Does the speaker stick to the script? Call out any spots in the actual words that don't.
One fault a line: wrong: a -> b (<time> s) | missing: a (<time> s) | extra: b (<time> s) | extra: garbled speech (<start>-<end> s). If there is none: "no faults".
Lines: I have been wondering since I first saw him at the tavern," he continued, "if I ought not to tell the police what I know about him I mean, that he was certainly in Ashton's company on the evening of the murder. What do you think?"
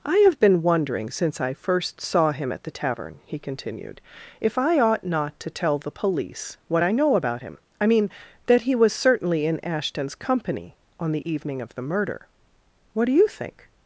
no faults